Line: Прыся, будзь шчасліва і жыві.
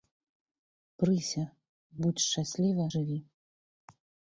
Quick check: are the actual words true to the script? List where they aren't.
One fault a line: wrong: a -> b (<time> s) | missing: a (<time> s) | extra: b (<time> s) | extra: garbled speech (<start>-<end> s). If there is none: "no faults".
missing: і (2.9 s)